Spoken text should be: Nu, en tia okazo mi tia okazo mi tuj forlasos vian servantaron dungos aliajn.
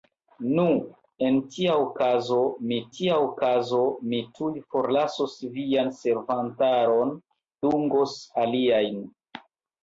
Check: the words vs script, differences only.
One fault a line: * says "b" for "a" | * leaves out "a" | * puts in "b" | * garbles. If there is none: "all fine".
all fine